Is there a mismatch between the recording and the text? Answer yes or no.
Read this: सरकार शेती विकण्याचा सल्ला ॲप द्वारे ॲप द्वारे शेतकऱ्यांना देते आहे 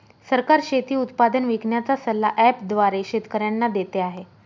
yes